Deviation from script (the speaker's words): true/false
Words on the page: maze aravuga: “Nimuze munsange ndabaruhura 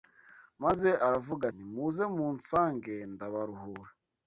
false